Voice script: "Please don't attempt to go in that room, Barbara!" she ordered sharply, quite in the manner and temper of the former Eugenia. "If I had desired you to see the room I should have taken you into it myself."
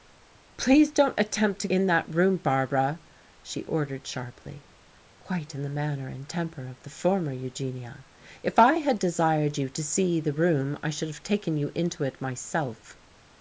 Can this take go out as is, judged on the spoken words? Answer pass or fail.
fail